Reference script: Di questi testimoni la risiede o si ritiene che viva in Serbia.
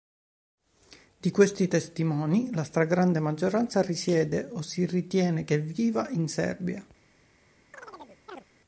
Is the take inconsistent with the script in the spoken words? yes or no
yes